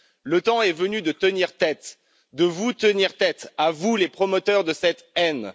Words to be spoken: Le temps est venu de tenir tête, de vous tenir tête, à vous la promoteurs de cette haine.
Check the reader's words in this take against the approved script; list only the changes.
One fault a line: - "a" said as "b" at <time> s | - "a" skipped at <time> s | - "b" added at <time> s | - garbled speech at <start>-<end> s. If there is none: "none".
- "la" said as "les" at 4.0 s